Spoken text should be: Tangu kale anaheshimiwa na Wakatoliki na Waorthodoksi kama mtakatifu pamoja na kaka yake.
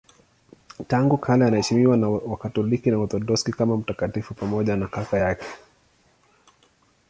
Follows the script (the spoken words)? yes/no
yes